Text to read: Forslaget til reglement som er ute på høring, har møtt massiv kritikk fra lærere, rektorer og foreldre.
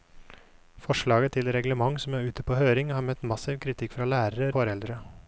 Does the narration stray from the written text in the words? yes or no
yes